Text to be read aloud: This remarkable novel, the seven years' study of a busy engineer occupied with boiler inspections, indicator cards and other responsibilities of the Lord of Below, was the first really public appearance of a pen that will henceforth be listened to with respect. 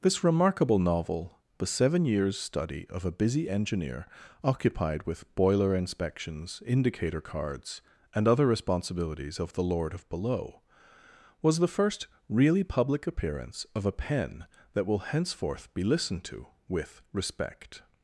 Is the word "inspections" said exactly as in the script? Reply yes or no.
yes